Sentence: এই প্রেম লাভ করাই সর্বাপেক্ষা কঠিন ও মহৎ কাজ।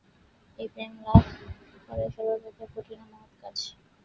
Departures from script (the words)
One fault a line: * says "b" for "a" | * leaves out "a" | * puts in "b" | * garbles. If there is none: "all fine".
all fine